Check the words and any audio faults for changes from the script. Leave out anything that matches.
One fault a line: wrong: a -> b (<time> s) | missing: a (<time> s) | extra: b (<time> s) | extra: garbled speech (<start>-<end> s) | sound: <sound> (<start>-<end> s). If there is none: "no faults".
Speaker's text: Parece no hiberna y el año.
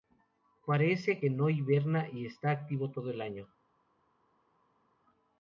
extra: que (1.2 s)
extra: está activo todo (2.3 s)